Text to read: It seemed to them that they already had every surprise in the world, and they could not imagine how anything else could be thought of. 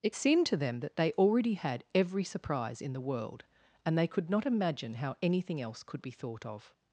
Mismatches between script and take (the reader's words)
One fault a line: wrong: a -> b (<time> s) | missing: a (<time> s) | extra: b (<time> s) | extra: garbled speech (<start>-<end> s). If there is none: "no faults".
no faults